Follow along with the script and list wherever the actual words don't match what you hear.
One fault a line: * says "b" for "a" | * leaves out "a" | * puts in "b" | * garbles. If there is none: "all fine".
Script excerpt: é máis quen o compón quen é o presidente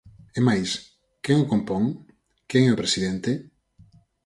all fine